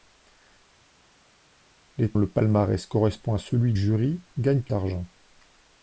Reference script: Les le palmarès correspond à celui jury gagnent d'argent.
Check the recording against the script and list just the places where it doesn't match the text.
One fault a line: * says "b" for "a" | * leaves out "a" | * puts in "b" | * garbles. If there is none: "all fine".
all fine